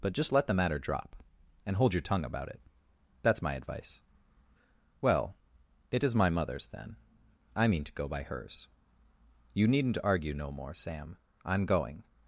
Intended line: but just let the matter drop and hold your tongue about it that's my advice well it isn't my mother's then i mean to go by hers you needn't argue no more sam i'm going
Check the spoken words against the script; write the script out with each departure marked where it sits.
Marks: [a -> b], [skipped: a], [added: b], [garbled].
but just let the matter drop and hold your tongue about it that's my advice well it [isn't -> is] my mother's then i mean to go by hers you needn't argue no more sam i'm going